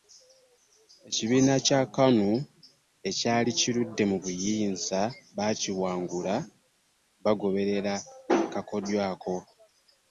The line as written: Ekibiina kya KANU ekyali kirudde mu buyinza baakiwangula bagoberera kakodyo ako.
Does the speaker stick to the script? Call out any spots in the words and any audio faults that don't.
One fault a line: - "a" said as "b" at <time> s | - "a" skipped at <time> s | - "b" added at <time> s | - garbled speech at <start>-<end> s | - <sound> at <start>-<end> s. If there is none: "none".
none